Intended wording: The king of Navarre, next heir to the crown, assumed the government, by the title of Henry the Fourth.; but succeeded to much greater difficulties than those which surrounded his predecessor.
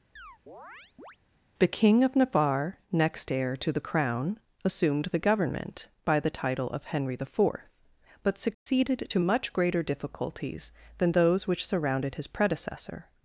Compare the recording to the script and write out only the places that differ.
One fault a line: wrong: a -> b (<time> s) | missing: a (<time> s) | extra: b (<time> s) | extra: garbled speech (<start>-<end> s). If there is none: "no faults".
no faults